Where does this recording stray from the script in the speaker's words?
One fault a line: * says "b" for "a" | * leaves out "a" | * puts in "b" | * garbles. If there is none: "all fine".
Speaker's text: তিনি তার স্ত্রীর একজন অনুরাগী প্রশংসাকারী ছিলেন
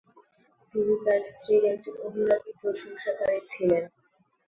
all fine